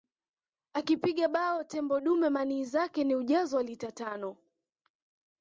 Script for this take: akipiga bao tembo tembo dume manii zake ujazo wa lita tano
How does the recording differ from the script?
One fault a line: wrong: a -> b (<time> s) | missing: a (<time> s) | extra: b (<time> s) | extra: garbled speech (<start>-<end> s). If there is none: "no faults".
missing: tembo (2.0 s)
extra: ni (3.0 s)